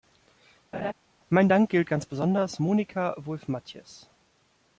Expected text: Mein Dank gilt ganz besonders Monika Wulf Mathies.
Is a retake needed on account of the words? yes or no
no